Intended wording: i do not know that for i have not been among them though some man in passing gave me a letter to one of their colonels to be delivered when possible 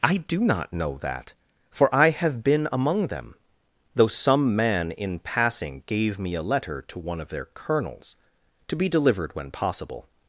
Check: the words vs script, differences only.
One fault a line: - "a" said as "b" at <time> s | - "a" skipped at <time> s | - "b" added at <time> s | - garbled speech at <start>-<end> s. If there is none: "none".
- "not" skipped at 2.4 s